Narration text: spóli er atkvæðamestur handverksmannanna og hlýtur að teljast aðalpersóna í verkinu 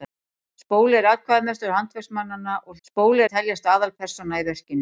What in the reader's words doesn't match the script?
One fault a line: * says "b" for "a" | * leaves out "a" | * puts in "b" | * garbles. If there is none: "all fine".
* says "spóli" for "hlýtur"